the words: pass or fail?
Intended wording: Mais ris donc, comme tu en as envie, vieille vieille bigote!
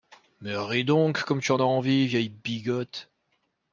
fail